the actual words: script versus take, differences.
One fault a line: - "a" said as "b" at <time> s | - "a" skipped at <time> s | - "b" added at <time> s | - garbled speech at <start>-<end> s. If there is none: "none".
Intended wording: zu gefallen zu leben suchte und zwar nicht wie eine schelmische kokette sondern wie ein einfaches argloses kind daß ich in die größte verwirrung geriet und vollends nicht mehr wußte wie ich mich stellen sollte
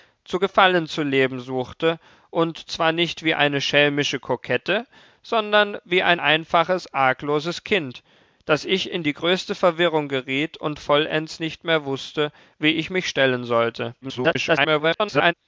- garbled speech at 14.0-15.3 s